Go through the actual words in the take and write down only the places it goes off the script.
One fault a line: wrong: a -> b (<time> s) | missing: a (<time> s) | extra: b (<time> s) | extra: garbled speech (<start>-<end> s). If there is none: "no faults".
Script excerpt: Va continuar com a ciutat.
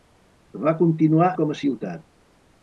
no faults